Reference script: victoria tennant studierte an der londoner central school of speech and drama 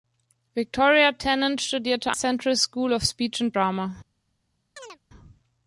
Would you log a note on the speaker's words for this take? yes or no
yes